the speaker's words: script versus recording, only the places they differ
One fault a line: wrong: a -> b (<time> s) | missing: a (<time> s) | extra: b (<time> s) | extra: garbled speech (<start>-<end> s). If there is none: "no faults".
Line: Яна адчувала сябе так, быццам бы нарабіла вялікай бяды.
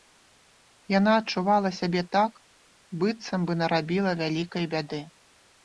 no faults